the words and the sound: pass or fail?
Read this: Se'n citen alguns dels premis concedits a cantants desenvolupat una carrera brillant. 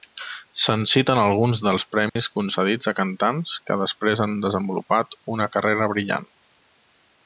fail